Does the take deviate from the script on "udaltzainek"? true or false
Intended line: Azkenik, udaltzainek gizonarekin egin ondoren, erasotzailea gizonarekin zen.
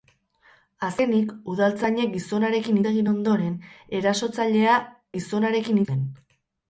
false